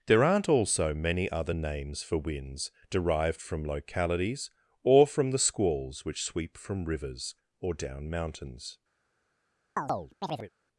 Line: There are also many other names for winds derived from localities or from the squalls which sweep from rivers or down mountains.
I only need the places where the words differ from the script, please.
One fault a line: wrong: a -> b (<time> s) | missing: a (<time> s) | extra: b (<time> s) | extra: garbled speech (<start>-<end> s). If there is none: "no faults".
wrong: are -> aren't (0.2 s)